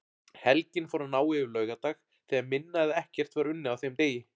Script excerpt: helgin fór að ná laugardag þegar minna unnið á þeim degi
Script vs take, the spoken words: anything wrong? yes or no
yes